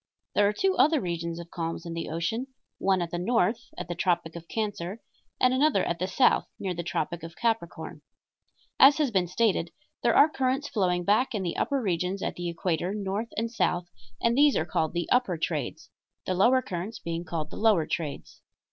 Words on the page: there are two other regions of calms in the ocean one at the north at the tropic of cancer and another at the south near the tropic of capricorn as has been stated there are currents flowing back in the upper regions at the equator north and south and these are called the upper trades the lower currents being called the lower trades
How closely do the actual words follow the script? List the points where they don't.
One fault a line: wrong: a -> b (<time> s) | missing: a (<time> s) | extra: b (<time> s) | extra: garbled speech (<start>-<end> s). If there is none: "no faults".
no faults